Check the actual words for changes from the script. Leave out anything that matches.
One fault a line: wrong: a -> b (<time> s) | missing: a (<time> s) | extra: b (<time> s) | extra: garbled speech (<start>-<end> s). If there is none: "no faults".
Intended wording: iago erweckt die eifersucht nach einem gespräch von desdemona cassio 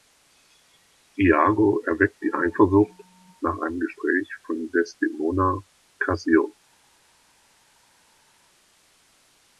no faults